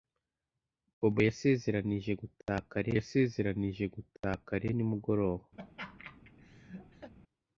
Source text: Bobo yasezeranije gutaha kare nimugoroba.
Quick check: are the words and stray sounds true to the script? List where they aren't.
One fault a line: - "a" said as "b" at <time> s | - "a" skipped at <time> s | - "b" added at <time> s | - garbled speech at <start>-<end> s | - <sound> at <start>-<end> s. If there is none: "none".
- "yasezeranije gutaha kare" added at 3.0 s
- laugh at 5.6-7.1 s